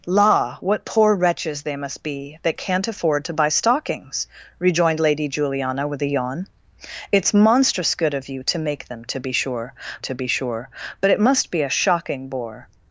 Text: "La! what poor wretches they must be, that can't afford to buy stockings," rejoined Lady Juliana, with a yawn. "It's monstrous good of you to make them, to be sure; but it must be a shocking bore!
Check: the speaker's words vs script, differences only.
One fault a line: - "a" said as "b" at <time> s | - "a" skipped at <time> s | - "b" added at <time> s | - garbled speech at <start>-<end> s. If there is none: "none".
- "to be sure" added at 10.0 s